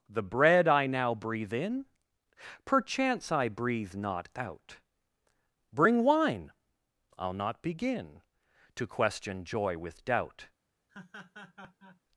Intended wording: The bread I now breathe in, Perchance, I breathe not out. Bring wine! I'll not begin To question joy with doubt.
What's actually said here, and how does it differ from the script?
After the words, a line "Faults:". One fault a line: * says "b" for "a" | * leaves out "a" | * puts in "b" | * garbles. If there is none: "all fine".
The bread I now breathe in, Perchance, I breathe not out. Bring wine! I'll not begin To question joy with doubt.
Faults:
all fine